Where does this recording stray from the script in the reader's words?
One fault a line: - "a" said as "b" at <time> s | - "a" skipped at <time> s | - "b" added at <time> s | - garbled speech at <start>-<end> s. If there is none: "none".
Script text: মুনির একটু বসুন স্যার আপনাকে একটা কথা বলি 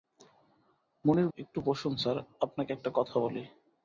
none